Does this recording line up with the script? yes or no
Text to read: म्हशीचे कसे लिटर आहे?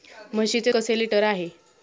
yes